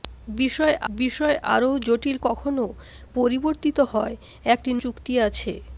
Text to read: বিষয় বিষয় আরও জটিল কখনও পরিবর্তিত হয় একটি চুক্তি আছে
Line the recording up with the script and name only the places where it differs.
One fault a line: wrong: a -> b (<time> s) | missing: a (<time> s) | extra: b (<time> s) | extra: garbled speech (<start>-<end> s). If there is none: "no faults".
no faults